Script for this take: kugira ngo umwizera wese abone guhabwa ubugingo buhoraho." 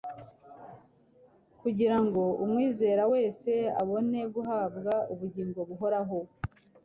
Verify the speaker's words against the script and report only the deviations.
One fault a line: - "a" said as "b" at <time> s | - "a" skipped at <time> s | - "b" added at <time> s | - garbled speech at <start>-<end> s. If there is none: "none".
none